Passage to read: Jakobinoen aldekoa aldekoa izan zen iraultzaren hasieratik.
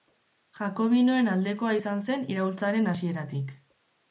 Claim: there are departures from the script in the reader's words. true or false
true